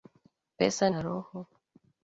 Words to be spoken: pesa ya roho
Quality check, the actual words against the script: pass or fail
pass